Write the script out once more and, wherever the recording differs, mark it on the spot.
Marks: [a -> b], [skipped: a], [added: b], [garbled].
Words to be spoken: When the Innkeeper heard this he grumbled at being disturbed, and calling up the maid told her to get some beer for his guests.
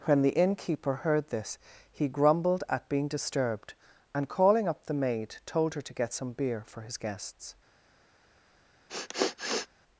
When the Innkeeper heard this he grumbled at being disturbed, and calling up the maid told her to get some beer for his guests.